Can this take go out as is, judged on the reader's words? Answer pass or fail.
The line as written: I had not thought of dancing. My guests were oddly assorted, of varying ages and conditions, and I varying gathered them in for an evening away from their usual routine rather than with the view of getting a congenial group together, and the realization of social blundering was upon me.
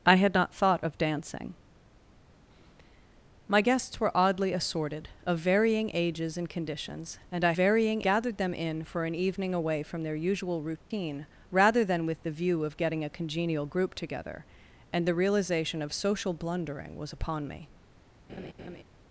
pass